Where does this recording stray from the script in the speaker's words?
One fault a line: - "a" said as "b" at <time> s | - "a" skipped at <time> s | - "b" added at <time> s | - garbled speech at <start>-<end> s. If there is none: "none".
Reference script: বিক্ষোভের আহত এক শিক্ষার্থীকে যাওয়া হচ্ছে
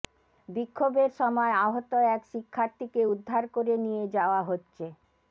- "সময়" added at 1.2 s
- "উদ্ধার করে নিয়ে" added at 3.1 s